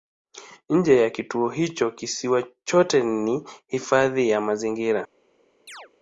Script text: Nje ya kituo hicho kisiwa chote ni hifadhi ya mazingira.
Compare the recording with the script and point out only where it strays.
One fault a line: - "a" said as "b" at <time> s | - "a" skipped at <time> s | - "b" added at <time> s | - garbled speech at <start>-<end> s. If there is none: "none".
none